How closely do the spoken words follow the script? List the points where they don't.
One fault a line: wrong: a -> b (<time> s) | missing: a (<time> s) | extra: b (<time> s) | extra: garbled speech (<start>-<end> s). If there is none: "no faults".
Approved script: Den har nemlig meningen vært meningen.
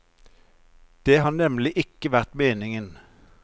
wrong: Den -> Det (1.1 s)
wrong: meningen -> ikke (1.7 s)